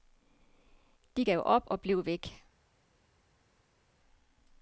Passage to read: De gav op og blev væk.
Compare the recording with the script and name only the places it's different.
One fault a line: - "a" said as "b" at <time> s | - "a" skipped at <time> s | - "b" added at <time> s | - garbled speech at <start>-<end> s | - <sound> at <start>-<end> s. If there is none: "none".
none